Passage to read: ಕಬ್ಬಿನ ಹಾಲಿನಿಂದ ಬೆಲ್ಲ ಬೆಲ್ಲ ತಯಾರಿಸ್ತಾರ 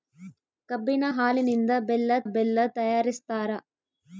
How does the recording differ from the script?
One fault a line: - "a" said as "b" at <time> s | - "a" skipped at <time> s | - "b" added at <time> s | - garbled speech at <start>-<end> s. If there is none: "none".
none